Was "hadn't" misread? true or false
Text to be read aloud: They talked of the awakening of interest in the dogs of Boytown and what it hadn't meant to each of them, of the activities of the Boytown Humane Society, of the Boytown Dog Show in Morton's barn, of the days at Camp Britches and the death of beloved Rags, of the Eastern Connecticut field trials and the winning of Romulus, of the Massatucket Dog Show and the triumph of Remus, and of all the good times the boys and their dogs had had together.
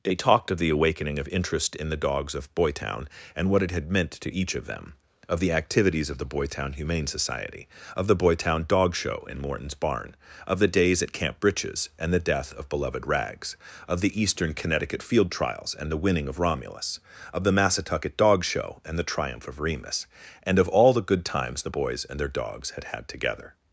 true